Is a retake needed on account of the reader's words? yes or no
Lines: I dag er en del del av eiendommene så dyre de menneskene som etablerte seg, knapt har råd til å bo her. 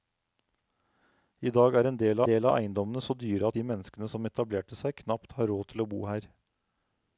no